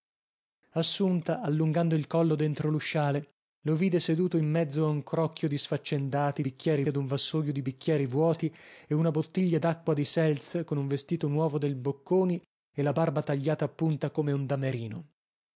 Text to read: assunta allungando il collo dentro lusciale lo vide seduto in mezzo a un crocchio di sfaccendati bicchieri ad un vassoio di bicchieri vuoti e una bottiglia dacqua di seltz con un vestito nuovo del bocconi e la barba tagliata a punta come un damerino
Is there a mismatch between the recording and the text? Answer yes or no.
no